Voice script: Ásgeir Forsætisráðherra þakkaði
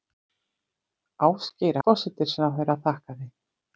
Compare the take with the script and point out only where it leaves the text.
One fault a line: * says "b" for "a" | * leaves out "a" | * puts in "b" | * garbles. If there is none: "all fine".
all fine